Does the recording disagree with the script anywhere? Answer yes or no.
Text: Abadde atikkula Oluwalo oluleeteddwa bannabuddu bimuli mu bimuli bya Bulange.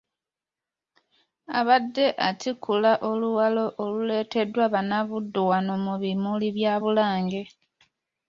yes